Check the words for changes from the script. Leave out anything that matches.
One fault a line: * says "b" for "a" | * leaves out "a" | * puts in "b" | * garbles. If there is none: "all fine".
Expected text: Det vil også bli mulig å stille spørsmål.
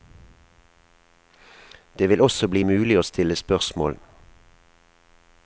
all fine